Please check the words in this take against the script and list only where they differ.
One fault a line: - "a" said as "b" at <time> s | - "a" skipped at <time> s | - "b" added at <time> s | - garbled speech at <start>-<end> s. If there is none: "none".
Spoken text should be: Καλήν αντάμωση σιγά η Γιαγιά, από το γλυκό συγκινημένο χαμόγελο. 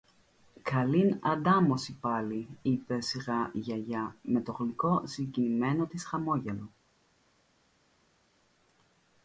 - "πάλι είπε" added at 2.0 s
- "από" said as "με" at 4.2 s
- "της" added at 5.8 s